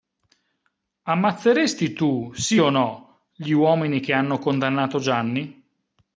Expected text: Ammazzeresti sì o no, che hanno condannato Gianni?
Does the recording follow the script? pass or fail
fail